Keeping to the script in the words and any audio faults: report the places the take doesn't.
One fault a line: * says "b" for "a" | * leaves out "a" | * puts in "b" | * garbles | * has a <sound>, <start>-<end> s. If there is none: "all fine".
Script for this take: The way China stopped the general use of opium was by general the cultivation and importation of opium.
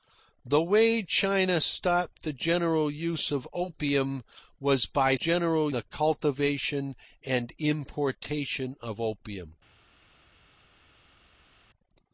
all fine